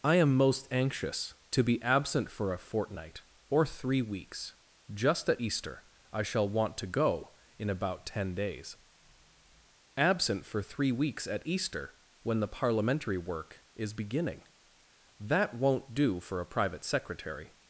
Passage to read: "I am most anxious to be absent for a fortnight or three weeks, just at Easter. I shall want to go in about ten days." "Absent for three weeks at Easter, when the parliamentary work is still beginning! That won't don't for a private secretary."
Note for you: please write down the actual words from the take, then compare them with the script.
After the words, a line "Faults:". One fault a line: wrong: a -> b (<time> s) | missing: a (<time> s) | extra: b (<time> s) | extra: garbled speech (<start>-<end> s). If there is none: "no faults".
"I am most anxious to be absent for a fortnight or three weeks, just at Easter. I shall want to go in about ten days." "Absent for three weeks at Easter, when the parliamentary work is beginning! That won't do for a private secretary."
Faults:
missing: still (13.9 s)
wrong: don't -> do (15.9 s)